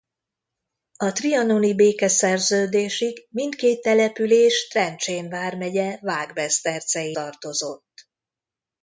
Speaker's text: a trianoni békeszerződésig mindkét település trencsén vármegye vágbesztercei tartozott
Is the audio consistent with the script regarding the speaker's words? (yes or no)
yes